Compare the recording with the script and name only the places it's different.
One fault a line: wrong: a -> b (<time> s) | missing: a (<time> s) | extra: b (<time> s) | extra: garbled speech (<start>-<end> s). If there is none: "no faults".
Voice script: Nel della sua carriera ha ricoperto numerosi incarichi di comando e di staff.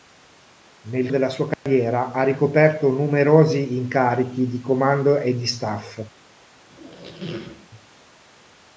no faults